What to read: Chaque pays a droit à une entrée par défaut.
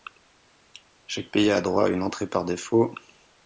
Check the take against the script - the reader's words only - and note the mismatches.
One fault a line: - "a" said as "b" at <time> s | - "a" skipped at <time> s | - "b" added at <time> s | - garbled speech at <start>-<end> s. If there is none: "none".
none